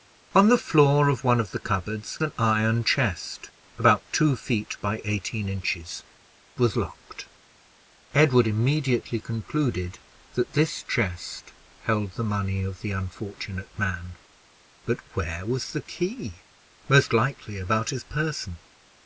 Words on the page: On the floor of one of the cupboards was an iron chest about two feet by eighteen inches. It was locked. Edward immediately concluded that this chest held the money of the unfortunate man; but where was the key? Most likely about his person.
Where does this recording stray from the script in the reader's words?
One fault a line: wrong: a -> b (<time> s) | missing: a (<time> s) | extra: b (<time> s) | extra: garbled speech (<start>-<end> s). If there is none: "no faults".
missing: was (2.2 s)
missing: It (6.0 s)